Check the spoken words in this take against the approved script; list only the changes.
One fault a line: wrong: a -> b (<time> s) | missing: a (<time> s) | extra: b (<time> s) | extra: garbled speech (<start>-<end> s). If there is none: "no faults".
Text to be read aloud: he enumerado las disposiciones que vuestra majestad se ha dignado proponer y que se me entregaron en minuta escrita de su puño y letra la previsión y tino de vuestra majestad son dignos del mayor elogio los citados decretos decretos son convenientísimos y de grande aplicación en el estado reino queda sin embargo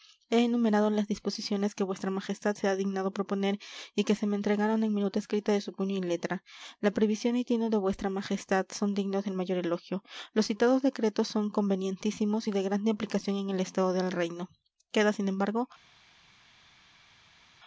missing: decretos (11.3 s)
extra: del (13.9 s)